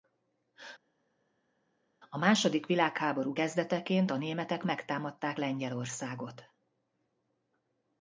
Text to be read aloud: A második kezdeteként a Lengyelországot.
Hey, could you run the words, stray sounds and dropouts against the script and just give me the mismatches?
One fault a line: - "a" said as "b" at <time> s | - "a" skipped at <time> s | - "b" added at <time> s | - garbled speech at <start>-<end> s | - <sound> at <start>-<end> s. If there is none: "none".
- "világháború" added at 2.7 s
- "németek megtámadták" added at 4.2 s